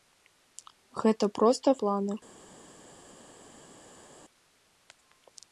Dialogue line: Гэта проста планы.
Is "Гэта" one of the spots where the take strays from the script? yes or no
no